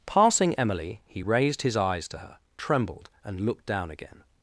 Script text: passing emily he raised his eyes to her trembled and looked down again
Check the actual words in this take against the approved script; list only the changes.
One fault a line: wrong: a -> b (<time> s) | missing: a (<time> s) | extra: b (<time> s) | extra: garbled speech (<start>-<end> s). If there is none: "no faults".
no faults